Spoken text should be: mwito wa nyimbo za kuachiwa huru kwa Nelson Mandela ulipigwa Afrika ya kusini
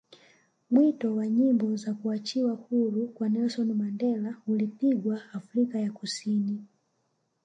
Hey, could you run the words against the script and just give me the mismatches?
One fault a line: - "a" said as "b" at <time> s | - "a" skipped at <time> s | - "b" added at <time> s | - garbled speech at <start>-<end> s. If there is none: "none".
none